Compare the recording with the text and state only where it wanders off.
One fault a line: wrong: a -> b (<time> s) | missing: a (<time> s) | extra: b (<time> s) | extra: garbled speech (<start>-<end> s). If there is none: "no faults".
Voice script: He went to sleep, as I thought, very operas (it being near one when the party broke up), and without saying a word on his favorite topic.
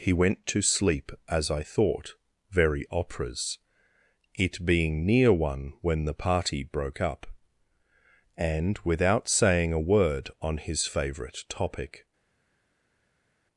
no faults